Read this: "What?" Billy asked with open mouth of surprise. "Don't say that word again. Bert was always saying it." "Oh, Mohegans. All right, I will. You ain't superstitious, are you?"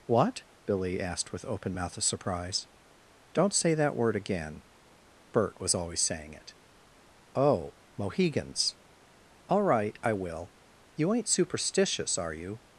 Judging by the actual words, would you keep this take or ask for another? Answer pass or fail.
pass